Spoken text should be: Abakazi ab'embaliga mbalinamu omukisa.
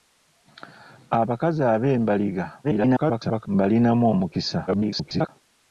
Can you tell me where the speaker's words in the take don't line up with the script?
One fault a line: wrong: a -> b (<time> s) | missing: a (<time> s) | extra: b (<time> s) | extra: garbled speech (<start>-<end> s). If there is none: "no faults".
extra: garbled speech (2.6-3.5 s)
extra: garbled speech (4.7-5.3 s)